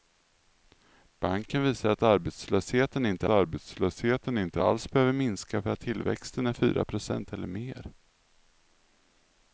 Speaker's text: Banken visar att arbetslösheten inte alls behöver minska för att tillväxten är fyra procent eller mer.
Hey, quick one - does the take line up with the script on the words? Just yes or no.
no